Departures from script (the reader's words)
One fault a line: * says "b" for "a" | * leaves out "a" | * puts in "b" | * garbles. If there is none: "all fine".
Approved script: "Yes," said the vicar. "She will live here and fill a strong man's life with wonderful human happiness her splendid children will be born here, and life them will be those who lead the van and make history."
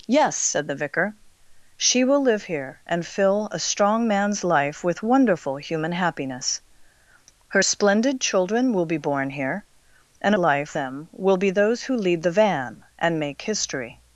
all fine